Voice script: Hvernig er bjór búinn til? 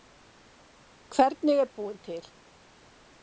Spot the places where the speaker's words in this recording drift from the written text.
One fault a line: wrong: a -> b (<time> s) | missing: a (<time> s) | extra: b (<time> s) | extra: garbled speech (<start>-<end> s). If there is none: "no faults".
missing: bjór (1.7 s)